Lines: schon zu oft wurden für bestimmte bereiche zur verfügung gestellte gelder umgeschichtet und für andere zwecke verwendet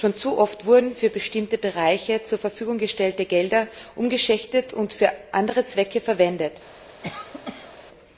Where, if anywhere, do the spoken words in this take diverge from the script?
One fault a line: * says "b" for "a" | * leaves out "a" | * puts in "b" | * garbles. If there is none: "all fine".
all fine